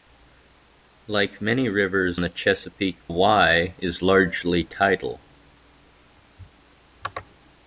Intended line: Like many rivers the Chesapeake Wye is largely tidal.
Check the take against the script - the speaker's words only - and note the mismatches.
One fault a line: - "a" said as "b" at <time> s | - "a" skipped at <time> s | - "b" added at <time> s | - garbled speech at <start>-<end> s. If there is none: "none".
none